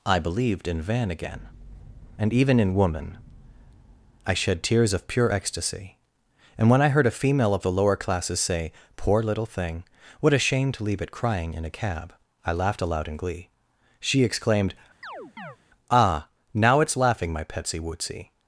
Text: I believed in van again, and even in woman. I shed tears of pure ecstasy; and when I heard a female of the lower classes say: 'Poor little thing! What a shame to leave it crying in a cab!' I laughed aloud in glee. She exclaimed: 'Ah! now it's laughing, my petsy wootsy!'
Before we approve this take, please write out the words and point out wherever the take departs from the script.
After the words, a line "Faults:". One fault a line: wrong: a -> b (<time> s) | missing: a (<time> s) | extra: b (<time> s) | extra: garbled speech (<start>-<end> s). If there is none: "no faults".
I believed in van again, and even in woman. I shed tears of pure ecstasy; and when I heard a female of the lower classes say: 'Poor little thing! What a shame to leave it crying in a cab!' I laughed aloud in glee. She exclaimed: 'Ah! now it's laughing, my petsy wootsy!'
Faults:
no faults